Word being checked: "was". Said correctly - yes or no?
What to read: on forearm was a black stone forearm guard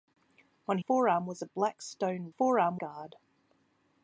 yes